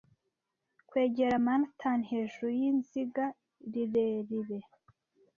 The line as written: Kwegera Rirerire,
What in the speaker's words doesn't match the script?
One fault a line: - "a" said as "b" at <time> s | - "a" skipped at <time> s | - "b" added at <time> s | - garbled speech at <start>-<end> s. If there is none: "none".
- "Manhattan hejuru yizinga" added at 1.5 s